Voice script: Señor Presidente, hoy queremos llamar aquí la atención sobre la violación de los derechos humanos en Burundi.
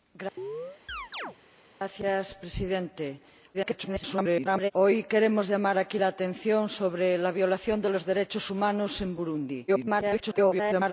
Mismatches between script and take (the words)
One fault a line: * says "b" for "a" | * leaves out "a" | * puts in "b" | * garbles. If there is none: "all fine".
* garbles
* garbles